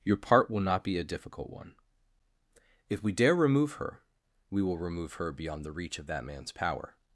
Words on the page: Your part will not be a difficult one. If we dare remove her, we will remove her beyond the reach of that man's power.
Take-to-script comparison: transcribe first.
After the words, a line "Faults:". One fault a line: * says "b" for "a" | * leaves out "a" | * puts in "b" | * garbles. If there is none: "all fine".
Your part will not be a difficult one. If we dare remove her, we will remove her beyond the reach of that man's power.
Faults:
all fine